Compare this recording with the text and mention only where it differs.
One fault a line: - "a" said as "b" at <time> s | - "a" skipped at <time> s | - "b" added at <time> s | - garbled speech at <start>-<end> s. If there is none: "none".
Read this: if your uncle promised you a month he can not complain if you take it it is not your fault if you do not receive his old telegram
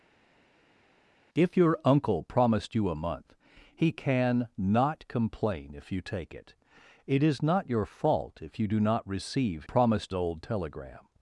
- "his" said as "promised" at 9.6 s